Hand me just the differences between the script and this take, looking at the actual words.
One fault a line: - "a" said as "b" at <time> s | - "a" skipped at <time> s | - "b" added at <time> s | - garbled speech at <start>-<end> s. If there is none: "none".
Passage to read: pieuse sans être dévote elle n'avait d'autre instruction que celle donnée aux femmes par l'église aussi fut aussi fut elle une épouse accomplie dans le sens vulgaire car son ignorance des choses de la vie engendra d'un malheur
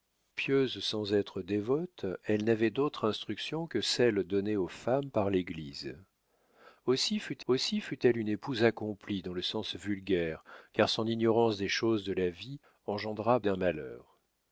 none